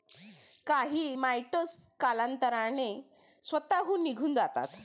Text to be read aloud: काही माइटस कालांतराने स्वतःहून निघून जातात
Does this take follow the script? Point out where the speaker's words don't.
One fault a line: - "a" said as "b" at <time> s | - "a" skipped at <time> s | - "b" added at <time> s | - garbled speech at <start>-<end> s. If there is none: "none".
none